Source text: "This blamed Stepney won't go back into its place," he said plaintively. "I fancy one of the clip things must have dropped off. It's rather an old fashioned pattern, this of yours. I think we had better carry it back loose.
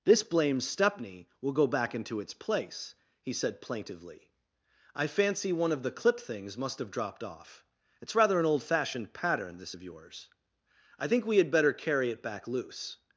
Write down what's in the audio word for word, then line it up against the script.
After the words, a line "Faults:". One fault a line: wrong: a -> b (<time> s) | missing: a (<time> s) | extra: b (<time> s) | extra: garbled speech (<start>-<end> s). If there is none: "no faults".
"This blamed Stepney will go back into its place," he said plaintively. "I fancy one of the clip things must have dropped off. It's rather an old fashioned pattern, this of yours. I think we had better carry it back loose.
Faults:
wrong: won't -> will (1.4 s)